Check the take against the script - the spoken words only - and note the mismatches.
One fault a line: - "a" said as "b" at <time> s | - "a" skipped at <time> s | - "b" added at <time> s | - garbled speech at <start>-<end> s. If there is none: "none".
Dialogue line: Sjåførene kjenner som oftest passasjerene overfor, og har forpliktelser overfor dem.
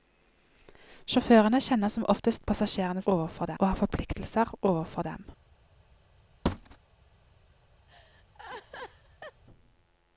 none